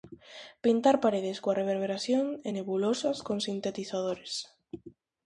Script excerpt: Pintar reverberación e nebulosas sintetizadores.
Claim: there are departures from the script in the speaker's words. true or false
true